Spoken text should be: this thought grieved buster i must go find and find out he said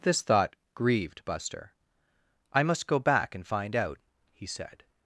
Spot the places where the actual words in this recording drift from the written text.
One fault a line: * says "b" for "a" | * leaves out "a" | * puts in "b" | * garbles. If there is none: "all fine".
* says "back" for "find"